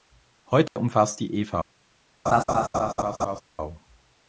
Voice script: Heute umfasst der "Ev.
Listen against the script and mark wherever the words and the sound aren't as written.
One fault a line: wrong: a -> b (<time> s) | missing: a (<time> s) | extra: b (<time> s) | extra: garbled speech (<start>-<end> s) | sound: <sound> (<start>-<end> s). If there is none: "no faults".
sound: dropout (0.7-0.8 s)
wrong: der -> die (1.2 s)
sound: laugh (2.3-3.4 s)